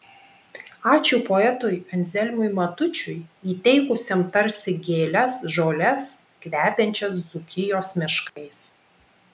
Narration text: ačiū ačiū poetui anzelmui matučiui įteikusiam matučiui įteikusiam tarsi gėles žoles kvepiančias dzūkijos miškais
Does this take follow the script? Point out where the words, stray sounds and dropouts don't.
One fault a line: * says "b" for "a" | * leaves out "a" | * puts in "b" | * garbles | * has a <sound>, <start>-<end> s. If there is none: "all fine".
* leaves out "ačiū"
* leaves out "matučiui įteikusiam"
* has a dropout, 8.3-8.4 s